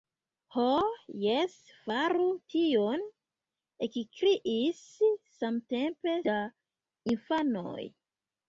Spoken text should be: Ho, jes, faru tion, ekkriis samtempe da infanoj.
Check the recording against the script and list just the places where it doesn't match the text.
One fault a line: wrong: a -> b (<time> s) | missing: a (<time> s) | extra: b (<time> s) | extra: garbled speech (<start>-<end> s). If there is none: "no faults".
no faults